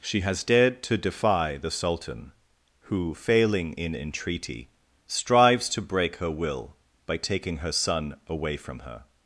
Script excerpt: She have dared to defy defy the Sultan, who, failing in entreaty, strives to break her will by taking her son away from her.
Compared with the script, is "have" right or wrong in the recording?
wrong